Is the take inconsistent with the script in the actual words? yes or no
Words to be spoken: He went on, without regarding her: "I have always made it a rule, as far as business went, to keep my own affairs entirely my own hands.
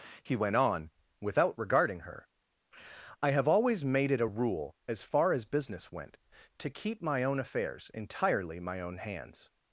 no